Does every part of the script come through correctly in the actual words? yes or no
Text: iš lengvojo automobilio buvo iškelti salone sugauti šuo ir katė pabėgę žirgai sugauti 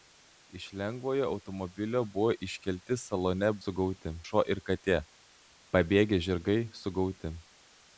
yes